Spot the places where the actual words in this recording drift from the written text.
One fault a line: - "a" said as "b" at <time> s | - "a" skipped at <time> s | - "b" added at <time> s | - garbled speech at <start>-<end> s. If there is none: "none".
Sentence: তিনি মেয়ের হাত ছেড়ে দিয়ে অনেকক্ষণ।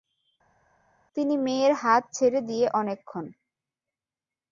none